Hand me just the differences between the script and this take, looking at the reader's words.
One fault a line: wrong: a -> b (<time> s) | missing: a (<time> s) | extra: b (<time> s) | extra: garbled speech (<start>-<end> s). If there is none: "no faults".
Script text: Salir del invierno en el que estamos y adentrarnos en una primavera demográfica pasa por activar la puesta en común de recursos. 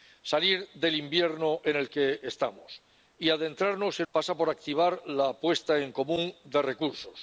missing: una primavera demográfica (4.1 s)